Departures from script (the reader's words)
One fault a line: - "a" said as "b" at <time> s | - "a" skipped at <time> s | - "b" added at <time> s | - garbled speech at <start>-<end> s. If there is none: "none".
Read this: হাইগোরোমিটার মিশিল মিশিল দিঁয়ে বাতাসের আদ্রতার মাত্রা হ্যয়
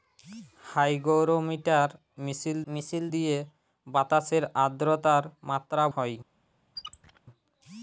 none